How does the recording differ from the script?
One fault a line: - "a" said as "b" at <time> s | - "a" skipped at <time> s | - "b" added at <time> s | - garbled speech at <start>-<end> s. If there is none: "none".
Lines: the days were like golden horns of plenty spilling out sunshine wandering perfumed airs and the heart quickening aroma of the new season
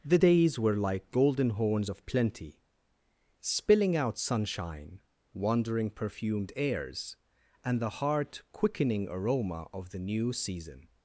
none